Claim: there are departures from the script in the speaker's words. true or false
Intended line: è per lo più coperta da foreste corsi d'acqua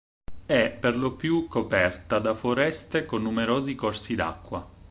true